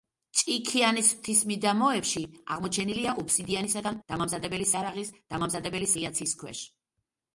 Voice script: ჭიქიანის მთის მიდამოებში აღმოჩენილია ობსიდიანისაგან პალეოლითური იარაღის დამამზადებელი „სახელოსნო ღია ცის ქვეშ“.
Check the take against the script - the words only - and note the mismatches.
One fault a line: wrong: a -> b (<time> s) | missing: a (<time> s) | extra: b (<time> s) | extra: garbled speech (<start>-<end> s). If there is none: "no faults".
wrong: პალეოლითური -> დამამზადებელი (4.0 s)
missing: სახელოსნო (5.9 s)